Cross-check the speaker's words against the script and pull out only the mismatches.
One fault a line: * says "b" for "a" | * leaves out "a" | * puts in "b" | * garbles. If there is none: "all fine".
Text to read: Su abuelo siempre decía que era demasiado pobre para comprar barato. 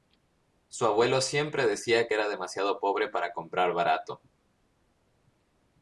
all fine